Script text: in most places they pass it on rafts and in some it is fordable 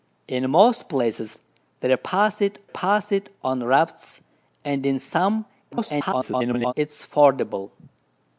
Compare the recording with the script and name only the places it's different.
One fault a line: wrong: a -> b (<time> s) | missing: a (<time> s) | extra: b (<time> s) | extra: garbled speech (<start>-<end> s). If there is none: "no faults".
extra: pass it (2.6 s)
extra: garbled speech (5.7-6.7 s)